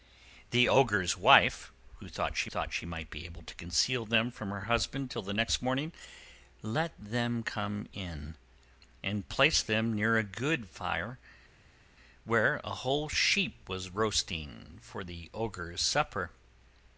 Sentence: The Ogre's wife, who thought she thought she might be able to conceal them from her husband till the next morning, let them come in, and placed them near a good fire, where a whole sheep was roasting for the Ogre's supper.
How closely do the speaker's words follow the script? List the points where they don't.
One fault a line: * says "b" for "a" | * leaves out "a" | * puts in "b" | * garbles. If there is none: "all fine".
all fine